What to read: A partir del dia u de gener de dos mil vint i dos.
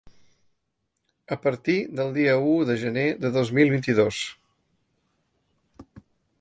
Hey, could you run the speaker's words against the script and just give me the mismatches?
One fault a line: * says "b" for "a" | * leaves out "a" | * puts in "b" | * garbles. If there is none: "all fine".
all fine